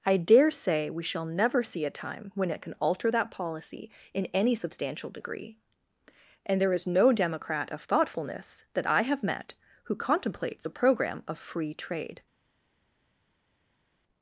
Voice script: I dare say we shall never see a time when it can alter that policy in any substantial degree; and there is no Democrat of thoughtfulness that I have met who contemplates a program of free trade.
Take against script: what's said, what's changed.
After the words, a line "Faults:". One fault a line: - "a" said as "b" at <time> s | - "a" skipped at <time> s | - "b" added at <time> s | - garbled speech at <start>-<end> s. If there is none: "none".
I dare say we shall never see a time when it can alter that policy in any substantial degree; and there is no Democrat of thoughtfulness that I have met who contemplates a program of free trade.
Faults:
none